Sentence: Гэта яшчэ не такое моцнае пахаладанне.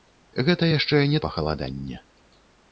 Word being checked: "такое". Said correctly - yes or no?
no